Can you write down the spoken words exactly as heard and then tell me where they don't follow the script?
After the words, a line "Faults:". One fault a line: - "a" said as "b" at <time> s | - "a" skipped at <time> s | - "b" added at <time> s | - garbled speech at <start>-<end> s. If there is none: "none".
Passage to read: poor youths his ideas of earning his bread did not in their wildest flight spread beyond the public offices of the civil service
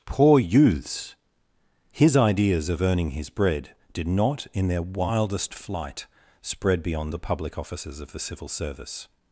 poor youths his ideas of earning his bread did not in their wildest flight spread beyond the public offices of the civil service
Faults:
none